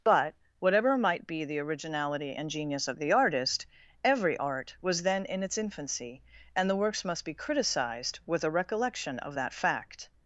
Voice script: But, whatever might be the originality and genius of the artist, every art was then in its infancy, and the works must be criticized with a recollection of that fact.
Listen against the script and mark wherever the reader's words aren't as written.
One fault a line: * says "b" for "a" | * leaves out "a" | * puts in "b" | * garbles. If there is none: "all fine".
all fine